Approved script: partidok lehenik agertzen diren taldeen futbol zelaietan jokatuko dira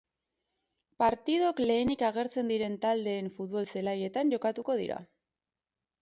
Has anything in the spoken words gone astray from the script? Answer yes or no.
no